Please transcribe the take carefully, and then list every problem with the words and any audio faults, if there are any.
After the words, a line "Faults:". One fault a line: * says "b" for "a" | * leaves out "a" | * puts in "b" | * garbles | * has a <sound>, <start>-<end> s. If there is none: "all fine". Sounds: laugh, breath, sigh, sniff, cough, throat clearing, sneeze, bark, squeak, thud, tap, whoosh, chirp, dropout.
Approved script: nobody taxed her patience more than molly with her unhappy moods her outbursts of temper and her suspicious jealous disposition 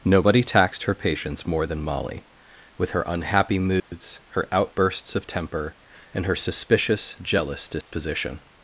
nobody taxed her patience more than molly with her unhappy moods her outbursts of temper and her suspicious jealous disposition
Faults:
* has a dropout, 3.8-3.9 s
* has a dropout, 7.8-7.9 s